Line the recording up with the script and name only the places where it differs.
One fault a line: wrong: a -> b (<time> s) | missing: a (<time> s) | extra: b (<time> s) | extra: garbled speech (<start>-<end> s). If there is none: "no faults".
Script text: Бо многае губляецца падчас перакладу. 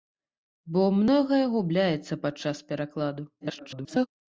extra: garbled speech (3.4-4.1 s)